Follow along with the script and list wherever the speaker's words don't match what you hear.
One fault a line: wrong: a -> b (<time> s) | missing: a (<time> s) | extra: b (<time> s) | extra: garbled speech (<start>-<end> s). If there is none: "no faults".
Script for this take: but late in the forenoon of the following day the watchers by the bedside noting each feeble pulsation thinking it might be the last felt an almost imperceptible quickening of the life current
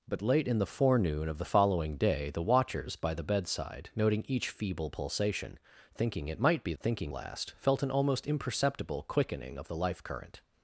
wrong: the -> thinking (6.8 s)